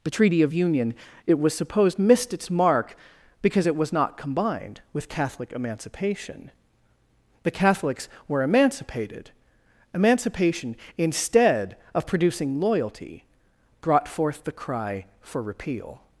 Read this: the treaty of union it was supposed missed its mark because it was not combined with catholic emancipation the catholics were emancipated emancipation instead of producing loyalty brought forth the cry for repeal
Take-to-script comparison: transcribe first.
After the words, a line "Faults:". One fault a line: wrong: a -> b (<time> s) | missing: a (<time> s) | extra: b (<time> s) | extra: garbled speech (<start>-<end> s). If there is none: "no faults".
the treaty of union it was supposed missed its mark because it was not combined with catholic emancipation the catholics were emancipated emancipation instead of producing loyalty brought forth the cry for repeal
Faults:
no faults